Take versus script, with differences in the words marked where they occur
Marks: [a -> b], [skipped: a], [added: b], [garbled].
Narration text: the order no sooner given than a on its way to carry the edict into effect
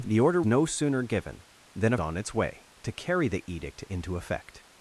the order no sooner given than a on its way to carry the edict into effect